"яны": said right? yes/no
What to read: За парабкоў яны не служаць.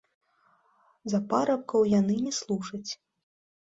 yes